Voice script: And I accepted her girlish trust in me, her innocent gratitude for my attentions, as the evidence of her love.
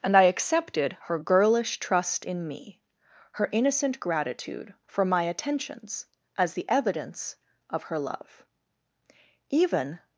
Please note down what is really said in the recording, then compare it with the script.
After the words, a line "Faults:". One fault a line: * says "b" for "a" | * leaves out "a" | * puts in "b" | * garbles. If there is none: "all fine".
And I accepted her girlish trust in me, her innocent gratitude for my attentions, as the evidence of her love. Even
Faults:
* puts in "Even"